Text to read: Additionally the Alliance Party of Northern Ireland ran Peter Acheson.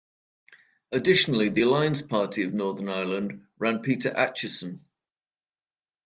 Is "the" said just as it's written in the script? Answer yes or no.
yes